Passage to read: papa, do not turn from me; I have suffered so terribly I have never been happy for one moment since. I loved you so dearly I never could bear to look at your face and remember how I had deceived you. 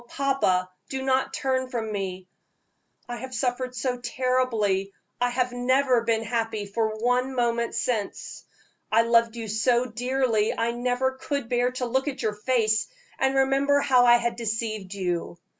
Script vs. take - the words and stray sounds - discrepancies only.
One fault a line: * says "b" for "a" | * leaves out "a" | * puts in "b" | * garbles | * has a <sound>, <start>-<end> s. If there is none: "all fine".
all fine